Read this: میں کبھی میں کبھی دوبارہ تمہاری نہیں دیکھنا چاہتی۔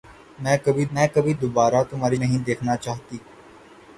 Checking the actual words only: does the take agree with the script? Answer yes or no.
yes